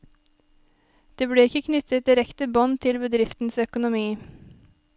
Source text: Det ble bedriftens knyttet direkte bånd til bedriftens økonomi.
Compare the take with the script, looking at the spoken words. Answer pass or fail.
fail